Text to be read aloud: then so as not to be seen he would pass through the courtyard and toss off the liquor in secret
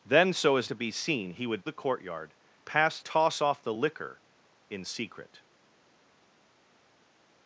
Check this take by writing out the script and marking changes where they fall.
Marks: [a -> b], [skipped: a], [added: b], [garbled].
then so as [skipped: not] to be seen he would [skipped: pass through] the courtyard [and -> pass] toss off the liquor in secret